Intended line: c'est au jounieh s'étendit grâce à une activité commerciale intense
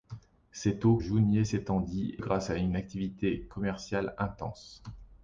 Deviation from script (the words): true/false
false